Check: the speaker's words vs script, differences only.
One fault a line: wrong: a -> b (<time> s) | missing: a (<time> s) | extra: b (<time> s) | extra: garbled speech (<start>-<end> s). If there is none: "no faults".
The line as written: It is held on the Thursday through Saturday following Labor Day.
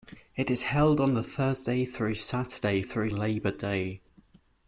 wrong: following -> through (2.8 s)